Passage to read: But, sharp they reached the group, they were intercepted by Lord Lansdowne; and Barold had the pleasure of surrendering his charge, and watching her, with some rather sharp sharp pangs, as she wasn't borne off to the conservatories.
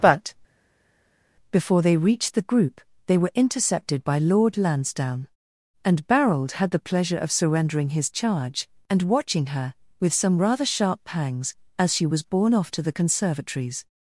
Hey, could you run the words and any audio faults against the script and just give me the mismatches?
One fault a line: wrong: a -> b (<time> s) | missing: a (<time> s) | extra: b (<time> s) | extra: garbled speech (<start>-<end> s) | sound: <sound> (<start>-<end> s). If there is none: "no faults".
wrong: sharp -> before (1.5 s)
missing: sharp (11.0 s)
wrong: wasn't -> was (12.0 s)